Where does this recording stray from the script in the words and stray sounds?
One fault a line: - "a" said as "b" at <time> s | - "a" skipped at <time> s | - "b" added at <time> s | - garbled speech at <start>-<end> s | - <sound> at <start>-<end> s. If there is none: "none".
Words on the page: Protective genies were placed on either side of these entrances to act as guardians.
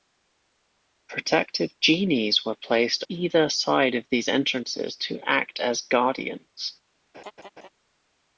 - "on" skipped at 3.0 s
- laugh at 7.1-7.7 s